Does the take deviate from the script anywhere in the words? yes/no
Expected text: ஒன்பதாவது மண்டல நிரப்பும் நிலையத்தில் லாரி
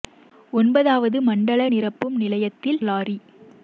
no